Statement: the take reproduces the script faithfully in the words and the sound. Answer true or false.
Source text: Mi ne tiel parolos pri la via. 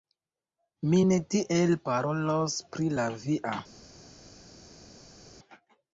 true